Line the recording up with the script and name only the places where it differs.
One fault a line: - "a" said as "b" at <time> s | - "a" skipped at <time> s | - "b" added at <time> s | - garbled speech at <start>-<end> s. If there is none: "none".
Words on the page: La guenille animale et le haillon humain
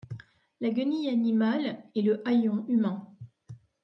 none